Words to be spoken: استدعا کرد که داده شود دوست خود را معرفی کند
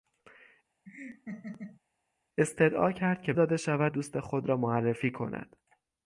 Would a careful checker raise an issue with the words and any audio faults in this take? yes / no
yes